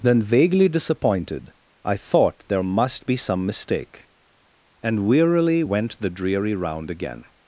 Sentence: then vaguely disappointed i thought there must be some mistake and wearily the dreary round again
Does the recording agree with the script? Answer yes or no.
no